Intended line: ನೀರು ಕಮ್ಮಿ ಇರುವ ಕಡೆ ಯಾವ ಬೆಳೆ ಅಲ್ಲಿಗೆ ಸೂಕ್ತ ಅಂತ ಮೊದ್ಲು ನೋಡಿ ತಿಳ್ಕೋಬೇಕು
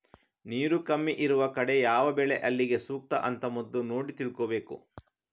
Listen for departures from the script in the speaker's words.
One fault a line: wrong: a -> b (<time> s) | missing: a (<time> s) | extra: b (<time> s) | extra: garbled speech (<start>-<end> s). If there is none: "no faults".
no faults